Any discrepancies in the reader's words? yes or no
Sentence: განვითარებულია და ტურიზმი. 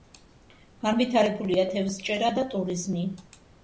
yes